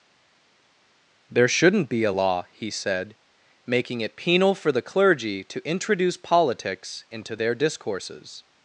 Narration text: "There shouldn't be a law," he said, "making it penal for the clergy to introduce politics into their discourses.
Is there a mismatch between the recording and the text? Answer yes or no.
no